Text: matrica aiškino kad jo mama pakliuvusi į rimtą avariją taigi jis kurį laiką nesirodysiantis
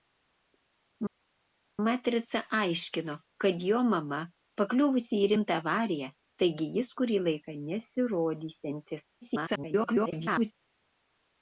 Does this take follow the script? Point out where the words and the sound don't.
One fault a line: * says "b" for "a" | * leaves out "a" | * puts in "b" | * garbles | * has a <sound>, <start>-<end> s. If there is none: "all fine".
* garbles